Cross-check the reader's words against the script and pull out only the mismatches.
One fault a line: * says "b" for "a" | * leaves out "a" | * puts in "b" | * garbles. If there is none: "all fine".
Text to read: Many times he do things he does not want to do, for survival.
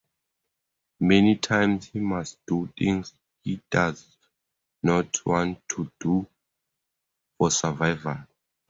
* puts in "must"